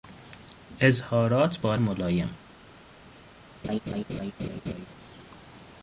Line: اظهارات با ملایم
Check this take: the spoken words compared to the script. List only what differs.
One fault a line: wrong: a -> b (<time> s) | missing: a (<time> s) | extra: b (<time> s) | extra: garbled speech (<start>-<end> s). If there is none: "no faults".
no faults